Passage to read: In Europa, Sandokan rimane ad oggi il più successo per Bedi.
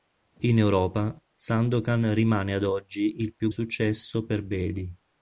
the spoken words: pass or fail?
pass